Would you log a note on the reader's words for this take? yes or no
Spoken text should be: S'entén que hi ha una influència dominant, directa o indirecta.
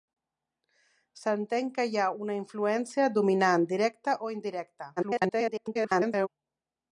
yes